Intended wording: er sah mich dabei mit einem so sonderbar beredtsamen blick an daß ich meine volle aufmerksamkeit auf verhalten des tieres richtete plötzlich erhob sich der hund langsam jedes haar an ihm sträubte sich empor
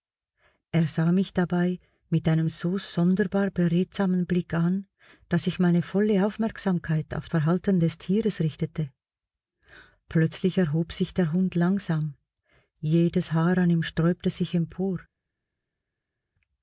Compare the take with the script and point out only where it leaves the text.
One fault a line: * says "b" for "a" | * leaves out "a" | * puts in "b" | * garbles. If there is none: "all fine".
all fine